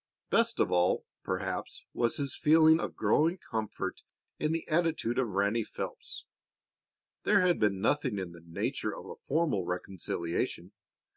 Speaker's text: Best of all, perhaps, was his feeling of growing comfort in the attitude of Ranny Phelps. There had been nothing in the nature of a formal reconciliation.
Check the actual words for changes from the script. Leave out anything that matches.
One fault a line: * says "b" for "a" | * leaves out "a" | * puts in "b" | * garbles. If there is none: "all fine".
all fine